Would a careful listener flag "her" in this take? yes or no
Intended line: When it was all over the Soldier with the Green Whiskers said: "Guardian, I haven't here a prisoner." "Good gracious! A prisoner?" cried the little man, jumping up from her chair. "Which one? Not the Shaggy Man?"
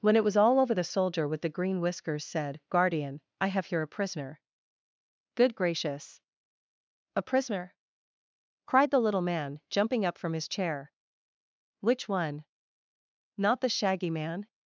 yes